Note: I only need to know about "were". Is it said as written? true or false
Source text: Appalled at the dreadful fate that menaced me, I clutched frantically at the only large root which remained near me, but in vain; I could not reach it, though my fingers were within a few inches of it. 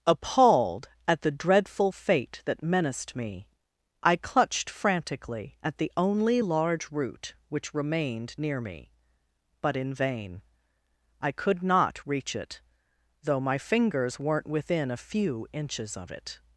false